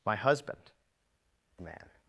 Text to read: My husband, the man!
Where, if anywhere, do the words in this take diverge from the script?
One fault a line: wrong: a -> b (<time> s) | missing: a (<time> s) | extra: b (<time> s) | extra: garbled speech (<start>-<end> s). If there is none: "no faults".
no faults